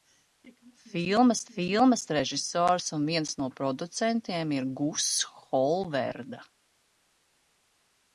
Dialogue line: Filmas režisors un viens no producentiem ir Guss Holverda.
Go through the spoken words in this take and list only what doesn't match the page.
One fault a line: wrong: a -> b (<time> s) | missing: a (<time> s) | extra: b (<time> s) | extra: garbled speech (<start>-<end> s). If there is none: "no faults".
extra: filmas (1.5 s)